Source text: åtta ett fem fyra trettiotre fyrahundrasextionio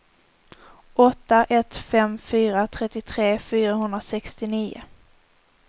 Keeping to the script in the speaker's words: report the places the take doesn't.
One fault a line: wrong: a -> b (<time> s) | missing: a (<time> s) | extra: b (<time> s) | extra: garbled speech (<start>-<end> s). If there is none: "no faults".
no faults